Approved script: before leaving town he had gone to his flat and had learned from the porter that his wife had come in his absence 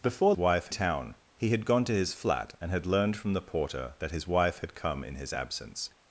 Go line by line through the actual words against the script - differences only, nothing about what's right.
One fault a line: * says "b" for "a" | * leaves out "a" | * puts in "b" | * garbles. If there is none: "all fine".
* says "wife" for "leaving"